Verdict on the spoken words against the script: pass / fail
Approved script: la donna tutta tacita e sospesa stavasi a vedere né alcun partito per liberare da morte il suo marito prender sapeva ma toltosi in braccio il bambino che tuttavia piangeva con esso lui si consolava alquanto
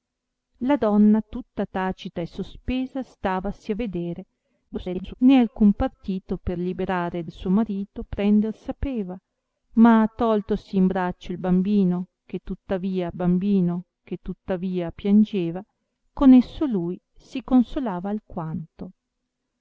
fail